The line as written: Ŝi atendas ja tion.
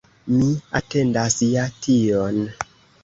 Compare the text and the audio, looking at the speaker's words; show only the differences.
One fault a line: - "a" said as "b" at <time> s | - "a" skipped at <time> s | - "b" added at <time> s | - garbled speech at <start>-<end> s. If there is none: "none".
- "Ŝi" said as "Mi" at 0.3 s